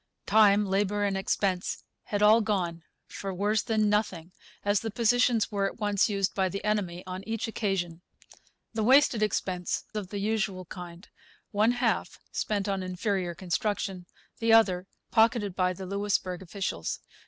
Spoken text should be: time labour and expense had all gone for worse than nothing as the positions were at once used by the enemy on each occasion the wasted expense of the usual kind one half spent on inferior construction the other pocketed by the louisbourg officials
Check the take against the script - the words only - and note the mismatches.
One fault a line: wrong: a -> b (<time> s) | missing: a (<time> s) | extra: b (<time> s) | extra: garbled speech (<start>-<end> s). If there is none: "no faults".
no faults